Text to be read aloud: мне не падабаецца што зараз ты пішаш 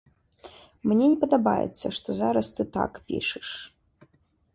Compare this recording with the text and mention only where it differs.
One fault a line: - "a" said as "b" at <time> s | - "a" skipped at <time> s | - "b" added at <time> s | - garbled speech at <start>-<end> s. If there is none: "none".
- "так" added at 2.8 s